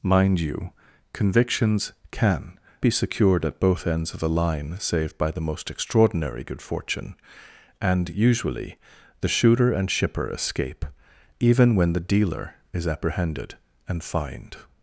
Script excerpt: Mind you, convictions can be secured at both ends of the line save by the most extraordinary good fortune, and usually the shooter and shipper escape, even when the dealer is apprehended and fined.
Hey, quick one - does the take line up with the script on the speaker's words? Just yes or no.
yes